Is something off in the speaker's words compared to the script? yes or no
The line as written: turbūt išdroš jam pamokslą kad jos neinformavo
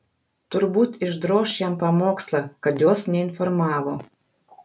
no